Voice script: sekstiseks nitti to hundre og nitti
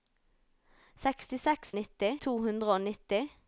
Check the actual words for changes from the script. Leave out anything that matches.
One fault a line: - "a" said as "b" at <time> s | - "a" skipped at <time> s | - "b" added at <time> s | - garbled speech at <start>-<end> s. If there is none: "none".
none